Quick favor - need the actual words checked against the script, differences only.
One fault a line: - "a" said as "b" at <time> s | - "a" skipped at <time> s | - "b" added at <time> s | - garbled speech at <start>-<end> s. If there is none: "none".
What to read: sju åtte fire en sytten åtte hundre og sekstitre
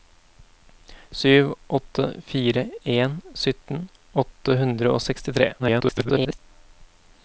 - garbled speech at 5.6-6.4 s